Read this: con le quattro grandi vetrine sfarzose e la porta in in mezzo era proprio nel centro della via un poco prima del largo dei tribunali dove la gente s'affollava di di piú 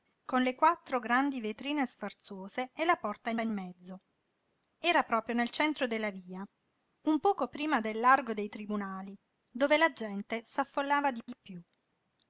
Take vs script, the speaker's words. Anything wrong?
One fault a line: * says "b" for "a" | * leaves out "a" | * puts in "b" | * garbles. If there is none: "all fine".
all fine